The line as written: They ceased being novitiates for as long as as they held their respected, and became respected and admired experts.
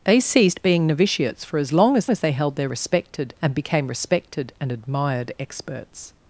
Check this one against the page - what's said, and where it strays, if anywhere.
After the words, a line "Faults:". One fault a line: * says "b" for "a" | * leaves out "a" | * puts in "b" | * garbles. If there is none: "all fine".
They ceased being novitiates for as long as as they held their respected, and became respected and admired experts.
Faults:
all fine